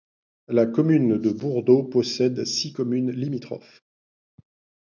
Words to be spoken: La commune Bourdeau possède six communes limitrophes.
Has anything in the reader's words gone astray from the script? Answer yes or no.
yes